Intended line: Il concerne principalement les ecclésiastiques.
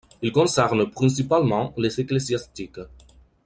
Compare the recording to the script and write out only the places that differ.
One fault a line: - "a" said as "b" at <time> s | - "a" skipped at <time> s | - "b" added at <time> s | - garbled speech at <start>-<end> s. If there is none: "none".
none